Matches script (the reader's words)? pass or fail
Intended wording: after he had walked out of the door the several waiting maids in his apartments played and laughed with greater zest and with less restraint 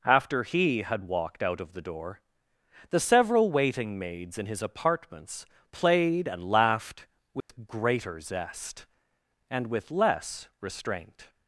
pass